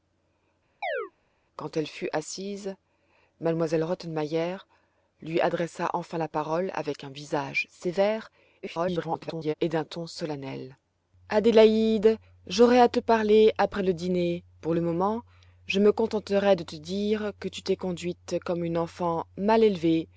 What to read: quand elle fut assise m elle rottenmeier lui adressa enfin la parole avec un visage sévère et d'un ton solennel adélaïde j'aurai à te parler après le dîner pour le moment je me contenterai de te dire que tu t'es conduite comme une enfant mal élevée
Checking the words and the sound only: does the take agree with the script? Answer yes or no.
no